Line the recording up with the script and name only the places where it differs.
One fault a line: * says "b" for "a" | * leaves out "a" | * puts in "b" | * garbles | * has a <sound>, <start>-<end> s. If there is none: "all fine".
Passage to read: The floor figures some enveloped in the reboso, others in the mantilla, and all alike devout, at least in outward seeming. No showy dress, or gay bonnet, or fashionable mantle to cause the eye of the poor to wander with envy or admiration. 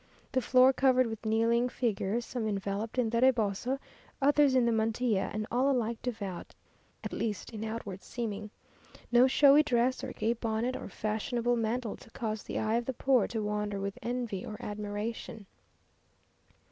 * puts in "covered with kneeling"